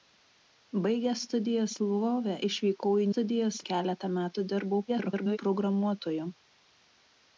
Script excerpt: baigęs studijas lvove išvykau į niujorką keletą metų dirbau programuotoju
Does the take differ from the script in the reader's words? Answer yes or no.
yes